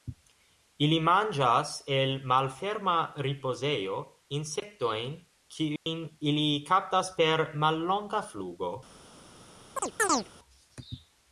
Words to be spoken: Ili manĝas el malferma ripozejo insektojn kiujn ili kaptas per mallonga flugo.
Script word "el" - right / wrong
right